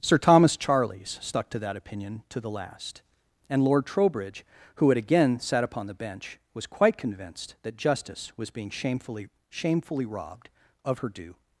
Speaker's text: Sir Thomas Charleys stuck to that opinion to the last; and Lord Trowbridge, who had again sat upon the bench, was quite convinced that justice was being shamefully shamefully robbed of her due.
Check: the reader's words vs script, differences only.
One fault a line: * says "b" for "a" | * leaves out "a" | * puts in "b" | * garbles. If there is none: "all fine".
all fine